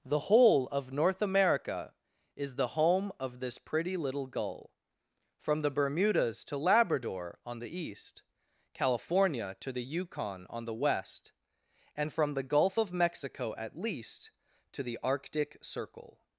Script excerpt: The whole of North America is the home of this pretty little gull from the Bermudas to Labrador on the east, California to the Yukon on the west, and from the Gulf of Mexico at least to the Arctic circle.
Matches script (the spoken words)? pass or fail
pass